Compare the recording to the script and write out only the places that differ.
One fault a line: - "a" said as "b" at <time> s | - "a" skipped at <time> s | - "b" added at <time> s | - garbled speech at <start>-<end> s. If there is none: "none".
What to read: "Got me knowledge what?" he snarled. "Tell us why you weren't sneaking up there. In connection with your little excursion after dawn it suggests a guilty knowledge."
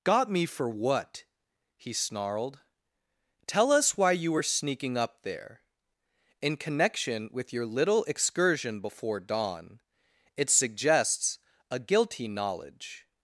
- "knowledge" said as "for" at 0.5 s
- "weren't" said as "were" at 4.3 s
- "after" said as "before" at 8.8 s